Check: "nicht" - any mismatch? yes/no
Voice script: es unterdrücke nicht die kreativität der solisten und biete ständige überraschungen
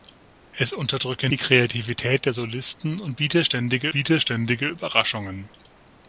yes